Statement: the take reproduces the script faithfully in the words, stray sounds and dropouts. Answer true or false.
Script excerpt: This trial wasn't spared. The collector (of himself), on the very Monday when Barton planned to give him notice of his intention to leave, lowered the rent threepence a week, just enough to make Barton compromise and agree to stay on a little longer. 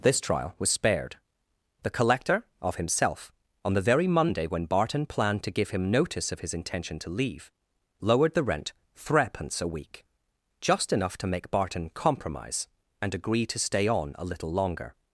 false